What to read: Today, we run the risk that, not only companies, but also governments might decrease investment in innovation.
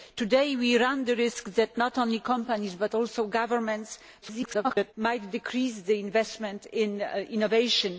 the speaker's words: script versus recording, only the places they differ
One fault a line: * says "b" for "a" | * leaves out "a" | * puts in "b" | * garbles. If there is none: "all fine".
* garbles